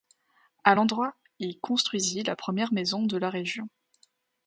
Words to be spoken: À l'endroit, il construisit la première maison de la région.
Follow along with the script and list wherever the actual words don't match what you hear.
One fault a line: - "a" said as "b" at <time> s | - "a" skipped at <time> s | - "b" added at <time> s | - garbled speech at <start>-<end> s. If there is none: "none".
none